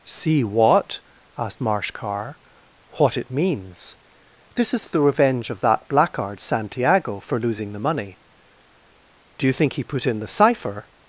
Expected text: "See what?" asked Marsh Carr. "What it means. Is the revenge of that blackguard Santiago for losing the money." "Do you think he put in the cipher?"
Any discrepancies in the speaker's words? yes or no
yes